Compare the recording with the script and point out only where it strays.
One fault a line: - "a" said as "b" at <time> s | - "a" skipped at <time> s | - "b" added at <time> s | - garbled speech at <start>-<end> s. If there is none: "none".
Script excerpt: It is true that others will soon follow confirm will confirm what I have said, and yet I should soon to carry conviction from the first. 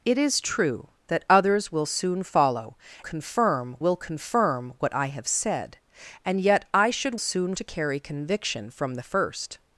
none